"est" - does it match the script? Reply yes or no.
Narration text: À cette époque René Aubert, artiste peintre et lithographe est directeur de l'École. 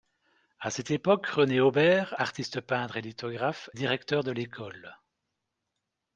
no